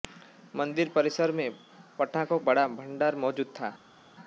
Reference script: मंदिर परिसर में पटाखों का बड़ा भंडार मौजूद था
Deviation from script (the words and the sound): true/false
true